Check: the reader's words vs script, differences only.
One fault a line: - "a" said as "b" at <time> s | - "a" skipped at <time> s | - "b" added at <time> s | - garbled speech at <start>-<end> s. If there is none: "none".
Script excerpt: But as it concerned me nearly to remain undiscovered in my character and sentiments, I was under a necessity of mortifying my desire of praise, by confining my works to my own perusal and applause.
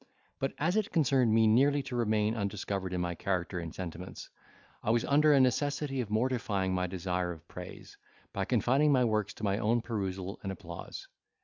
none